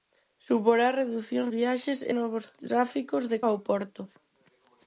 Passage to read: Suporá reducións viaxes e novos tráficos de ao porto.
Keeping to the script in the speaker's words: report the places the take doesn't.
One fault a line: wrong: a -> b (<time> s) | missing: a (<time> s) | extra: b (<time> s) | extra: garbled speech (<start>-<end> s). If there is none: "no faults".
no faults